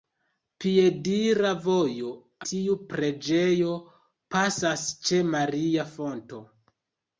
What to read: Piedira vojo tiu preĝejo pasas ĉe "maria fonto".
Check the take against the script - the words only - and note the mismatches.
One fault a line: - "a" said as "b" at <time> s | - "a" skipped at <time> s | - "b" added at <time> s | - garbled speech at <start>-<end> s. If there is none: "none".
none